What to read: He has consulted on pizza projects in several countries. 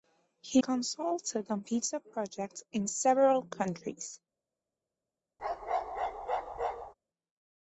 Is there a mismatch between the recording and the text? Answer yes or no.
yes